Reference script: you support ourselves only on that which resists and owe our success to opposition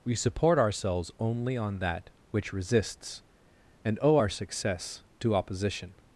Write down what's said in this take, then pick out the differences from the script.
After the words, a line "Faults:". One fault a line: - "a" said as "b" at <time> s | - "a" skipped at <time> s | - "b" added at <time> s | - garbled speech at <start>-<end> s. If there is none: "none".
we support ourselves only on that which resists and owe our success to opposition
Faults:
- "you" said as "we" at 0.0 s